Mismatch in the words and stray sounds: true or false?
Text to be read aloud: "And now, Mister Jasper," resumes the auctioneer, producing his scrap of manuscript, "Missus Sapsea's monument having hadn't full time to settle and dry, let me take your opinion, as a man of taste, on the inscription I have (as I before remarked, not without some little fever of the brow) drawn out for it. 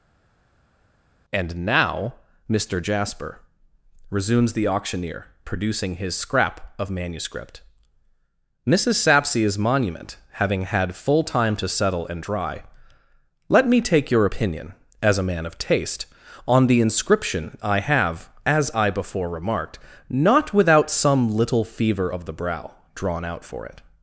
true